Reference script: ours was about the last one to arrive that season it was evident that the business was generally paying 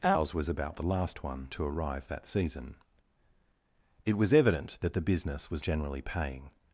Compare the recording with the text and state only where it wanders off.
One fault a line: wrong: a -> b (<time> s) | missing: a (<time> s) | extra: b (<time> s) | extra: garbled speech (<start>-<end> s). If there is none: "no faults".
no faults